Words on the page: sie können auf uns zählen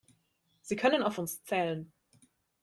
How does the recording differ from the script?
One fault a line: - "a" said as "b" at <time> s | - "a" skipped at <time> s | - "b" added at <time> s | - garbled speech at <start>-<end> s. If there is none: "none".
none